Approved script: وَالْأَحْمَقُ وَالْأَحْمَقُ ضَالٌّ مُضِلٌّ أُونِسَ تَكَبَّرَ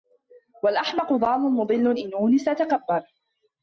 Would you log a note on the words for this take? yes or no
yes